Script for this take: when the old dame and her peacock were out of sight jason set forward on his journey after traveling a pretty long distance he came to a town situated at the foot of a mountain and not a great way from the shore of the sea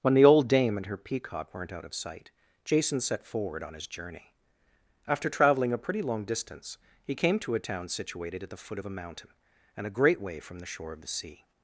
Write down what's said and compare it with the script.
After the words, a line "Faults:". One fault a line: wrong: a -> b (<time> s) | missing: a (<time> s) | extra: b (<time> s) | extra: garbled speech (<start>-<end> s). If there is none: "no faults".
when the old dame and her peacock weren't out of sight jason set forward on his journey after traveling a pretty long distance he came to a town situated at the foot of a mountain and a great way from the shore of the sea
Faults:
wrong: were -> weren't (1.5 s)
missing: not (9.9 s)